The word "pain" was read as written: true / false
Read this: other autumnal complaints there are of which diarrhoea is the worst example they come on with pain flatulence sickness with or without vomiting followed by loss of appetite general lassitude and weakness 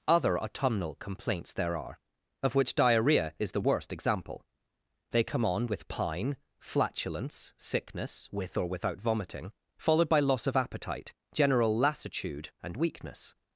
false